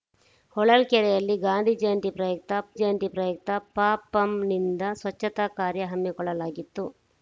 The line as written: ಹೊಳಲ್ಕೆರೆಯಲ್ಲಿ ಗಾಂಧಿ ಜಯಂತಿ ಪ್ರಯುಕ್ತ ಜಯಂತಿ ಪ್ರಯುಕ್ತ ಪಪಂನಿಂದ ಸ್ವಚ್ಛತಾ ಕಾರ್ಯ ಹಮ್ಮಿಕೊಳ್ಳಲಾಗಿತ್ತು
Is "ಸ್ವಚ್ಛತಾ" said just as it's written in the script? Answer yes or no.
yes